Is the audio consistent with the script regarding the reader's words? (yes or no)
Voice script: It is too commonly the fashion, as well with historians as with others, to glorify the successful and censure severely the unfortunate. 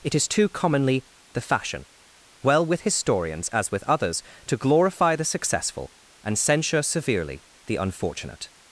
no